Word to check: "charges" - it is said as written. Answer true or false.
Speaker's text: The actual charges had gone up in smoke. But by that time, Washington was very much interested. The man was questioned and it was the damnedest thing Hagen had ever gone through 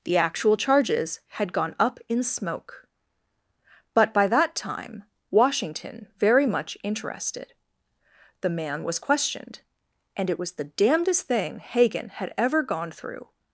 true